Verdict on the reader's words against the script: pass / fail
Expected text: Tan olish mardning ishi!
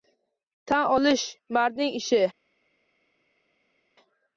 pass